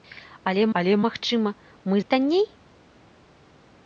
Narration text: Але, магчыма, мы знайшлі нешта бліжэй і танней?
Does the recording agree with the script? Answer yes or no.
no